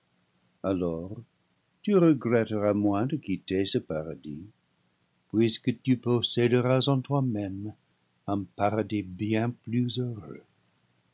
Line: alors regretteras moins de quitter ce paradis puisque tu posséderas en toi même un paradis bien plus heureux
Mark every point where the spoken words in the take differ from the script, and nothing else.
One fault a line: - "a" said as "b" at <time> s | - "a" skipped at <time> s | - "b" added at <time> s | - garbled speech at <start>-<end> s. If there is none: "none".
- "tu" added at 1.8 s